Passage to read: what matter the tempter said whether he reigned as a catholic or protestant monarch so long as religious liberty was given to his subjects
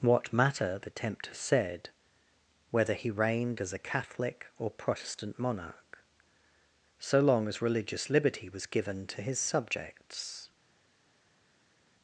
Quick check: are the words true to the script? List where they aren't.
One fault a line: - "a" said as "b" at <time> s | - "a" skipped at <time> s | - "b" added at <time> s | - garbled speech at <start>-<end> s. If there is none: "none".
none